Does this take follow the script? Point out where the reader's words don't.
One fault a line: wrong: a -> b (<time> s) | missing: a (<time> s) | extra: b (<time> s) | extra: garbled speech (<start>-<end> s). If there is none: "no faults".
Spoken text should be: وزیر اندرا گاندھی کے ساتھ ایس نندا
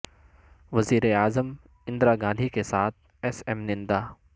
extra: اعظم (1.1 s)
extra: ایم (3.5 s)